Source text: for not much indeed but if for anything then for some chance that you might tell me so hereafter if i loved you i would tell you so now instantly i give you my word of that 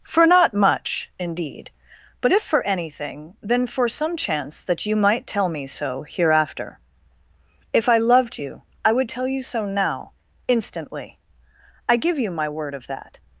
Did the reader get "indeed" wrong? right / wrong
right